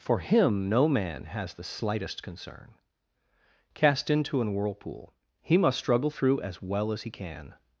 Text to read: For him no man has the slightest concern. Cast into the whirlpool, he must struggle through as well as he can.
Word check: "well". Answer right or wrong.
right